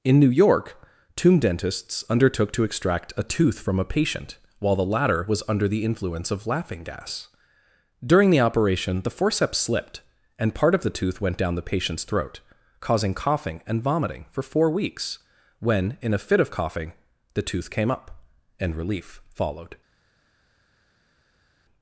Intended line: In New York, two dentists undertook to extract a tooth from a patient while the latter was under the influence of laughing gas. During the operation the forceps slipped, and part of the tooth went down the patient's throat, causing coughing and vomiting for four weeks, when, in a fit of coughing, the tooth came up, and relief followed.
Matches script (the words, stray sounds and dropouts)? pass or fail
fail